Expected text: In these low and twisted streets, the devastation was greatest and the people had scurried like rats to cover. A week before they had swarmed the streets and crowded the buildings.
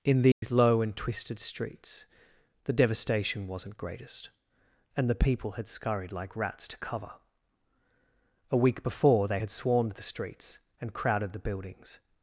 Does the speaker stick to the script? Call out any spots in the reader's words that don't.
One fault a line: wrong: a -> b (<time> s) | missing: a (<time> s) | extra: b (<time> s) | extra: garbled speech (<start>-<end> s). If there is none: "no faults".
wrong: was -> wasn't (3.5 s)